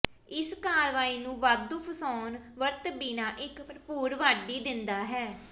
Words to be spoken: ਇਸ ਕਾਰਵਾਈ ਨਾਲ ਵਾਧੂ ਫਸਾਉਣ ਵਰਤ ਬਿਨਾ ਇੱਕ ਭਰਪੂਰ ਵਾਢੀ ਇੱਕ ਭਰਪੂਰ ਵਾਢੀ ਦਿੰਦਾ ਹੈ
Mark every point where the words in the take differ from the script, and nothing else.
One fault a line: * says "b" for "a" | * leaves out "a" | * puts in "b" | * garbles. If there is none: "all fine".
* says "ਨੂੰ" for "ਨਾਲ"
* leaves out "ਇੱਕ ਭਰਪੂਰ ਵਾਢੀ"